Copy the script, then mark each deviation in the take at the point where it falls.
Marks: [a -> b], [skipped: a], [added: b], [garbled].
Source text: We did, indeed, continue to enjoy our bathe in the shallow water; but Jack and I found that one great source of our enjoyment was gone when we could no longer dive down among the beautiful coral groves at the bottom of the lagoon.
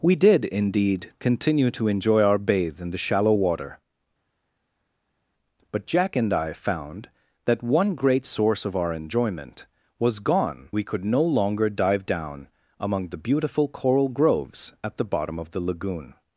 We did, indeed, continue to enjoy our bathe in the shallow water; but Jack and I found that one great source of our enjoyment was gone [skipped: when] we could no longer dive down among the beautiful coral groves at the bottom of the lagoon.